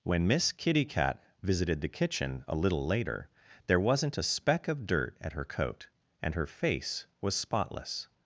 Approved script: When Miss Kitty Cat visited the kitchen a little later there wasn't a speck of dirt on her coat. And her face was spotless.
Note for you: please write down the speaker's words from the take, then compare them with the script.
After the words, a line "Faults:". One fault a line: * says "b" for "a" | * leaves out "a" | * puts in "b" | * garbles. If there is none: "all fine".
When Miss Kitty Cat visited the kitchen a little later there wasn't a speck of dirt at her coat. And her face was spotless.
Faults:
* says "at" for "on"